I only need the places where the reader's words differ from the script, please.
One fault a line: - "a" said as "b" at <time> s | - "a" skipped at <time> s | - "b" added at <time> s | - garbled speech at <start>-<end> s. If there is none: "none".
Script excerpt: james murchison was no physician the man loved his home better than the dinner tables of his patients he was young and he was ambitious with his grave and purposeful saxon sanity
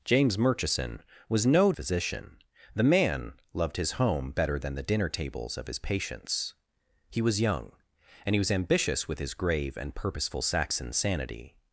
none